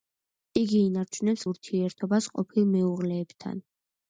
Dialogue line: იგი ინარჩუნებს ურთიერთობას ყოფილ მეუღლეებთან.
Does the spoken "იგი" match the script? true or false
true